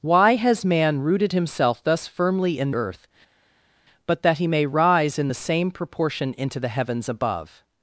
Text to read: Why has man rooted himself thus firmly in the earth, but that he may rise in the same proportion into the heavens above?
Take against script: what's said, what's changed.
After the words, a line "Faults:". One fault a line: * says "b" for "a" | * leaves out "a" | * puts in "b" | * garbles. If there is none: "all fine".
Why has man rooted himself thus firmly in earth, but that he may rise in the same proportion into the heavens above?
Faults:
* leaves out "the"